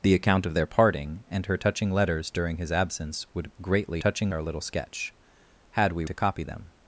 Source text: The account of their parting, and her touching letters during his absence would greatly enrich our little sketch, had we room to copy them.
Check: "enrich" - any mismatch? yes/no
yes